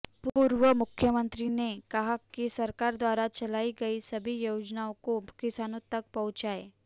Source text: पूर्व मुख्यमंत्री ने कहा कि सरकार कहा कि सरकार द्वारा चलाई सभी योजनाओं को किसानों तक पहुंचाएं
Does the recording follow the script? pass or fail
fail